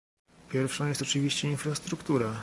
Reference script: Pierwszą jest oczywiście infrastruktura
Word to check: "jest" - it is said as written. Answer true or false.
true